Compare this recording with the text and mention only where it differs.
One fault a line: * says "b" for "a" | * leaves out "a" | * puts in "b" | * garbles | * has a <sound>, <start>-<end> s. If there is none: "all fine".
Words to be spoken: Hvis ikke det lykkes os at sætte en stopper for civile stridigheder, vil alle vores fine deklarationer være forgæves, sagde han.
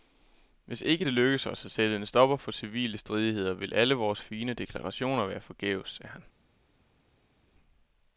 all fine